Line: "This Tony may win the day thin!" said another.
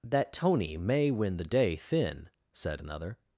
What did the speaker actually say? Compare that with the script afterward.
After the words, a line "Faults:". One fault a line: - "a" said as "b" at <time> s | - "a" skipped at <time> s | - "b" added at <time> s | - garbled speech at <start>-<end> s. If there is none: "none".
"That Tony may win the day thin!" said another.
Faults:
- "This" said as "That" at 0.0 s